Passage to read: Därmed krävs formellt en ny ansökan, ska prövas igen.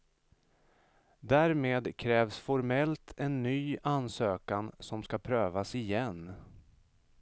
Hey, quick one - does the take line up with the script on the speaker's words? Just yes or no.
no